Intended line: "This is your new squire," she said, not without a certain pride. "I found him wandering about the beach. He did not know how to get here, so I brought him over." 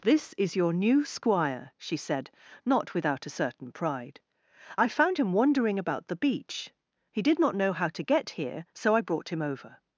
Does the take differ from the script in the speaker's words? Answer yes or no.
no